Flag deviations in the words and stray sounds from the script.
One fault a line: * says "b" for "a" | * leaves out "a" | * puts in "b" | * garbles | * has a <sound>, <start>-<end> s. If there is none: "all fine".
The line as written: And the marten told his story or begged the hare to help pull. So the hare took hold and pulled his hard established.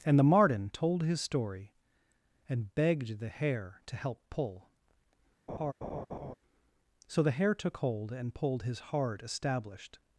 * says "and" for "or"
* has a laugh, 5.5-6.3 s